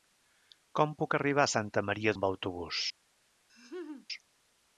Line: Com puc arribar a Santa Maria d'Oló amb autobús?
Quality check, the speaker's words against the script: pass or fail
fail